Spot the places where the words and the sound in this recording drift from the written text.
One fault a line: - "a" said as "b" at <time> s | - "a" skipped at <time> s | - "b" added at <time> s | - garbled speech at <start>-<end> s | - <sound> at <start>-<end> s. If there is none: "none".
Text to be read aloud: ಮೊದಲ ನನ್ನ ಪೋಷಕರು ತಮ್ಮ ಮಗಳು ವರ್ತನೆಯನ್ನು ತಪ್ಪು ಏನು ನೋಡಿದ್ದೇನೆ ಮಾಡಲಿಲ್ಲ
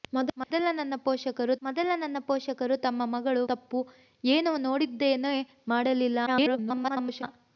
- dropout at 0.4-0.5 s
- "ಮೊದಲ ನನ್ನ ಪೋಷಕರು" added at 1.6 s
- "ವರ್ತನೆಯನ್ನು" skipped at 3.4 s
- garbled speech at 6.3-7.2 s